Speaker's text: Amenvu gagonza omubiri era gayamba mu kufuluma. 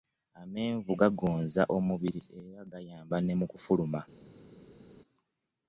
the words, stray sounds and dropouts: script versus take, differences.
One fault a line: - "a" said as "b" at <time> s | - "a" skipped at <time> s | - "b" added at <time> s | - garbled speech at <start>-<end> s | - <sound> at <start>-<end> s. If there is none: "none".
- "ne" added at 3.2 s